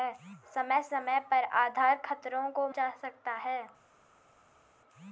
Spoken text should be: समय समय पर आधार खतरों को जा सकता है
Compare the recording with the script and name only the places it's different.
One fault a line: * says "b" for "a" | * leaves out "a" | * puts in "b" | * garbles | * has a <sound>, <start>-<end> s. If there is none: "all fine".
all fine